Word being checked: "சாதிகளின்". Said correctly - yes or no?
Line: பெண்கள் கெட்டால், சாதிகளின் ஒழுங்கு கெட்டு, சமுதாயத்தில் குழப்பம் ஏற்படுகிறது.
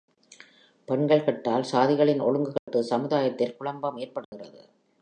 yes